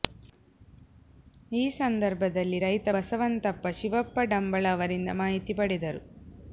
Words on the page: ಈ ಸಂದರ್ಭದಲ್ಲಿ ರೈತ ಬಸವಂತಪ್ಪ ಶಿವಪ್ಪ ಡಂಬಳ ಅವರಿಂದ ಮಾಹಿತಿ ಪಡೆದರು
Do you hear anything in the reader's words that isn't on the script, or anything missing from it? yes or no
no